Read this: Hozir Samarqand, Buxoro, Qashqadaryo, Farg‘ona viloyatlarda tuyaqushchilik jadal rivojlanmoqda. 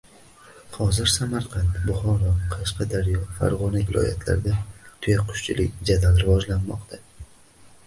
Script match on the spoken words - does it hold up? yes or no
yes